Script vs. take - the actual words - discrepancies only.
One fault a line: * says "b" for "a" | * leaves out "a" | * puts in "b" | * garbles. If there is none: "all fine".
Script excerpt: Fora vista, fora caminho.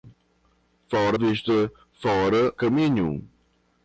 all fine